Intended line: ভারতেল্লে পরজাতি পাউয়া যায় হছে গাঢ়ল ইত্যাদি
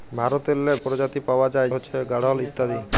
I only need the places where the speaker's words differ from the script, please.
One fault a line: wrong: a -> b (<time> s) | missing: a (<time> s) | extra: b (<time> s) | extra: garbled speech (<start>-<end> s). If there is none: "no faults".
no faults